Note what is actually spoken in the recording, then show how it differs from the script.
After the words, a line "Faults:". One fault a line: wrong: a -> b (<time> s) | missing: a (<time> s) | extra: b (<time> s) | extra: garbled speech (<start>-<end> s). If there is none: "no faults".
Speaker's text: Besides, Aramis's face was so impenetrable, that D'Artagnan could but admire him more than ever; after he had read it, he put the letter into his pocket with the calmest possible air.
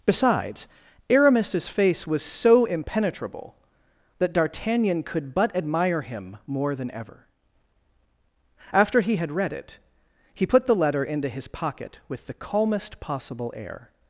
Besides, Aramis's face was so impenetrable, that D'Artagnan could but admire him more than ever; after he had read it, he put the letter into his pocket with the calmest possible air.
Faults:
no faults